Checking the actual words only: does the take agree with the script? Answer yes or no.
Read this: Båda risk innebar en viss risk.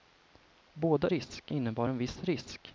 yes